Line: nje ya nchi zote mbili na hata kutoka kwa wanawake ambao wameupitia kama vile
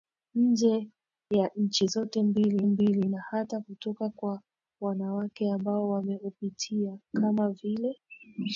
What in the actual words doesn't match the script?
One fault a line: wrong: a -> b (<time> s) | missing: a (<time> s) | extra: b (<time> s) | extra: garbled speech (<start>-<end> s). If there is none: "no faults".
extra: mbili (2.7 s)